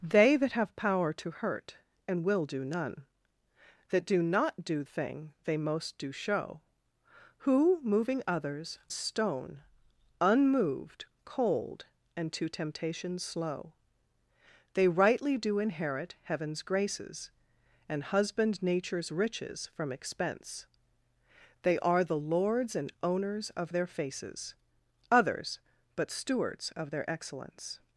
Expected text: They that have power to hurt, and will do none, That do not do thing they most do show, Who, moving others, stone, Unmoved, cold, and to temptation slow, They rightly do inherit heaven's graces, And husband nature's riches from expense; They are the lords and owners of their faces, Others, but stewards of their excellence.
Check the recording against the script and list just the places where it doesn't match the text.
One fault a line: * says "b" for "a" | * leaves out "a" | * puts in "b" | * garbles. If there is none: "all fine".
all fine